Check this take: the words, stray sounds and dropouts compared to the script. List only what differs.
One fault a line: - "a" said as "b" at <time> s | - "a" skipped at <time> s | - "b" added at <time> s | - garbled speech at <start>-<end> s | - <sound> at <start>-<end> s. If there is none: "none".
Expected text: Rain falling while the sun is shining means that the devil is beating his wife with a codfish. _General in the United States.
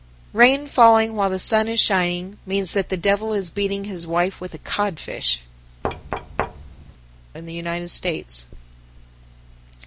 - "General" skipped at 5.4 s
- thud at 5.8-6.9 s